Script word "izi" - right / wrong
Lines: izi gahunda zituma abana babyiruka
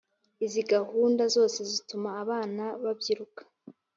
right